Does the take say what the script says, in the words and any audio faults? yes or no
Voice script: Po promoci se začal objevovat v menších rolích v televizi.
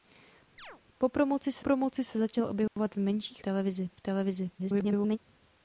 no